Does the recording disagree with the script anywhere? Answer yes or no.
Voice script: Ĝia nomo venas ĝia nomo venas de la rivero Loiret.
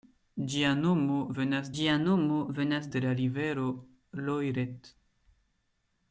no